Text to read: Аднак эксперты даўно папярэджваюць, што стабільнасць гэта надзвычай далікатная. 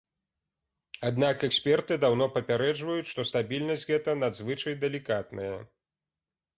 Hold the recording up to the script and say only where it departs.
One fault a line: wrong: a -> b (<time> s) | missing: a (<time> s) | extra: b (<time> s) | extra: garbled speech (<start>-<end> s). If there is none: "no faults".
no faults